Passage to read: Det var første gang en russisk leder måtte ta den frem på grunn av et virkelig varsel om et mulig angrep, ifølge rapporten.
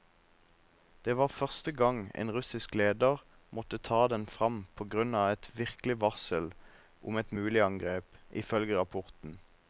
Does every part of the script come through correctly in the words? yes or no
yes